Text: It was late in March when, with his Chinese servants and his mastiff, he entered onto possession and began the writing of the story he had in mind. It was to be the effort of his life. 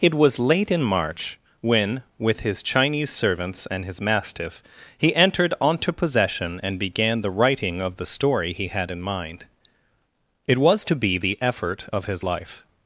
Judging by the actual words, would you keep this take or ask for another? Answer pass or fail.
pass